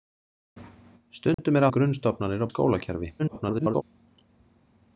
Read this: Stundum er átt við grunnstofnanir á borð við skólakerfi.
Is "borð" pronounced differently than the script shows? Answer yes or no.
yes